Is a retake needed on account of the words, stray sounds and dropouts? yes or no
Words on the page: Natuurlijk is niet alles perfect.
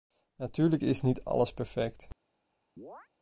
yes